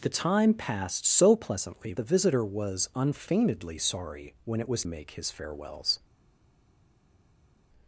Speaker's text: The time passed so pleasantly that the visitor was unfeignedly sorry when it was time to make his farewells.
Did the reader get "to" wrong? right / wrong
wrong